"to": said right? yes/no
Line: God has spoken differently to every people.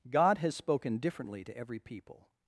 yes